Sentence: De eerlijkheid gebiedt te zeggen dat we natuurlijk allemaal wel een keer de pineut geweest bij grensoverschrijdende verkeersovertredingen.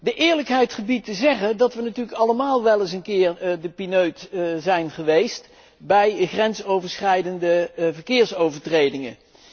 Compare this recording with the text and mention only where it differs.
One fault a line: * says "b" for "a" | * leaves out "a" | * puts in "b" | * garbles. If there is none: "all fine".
* puts in "eens"
* puts in "zijn"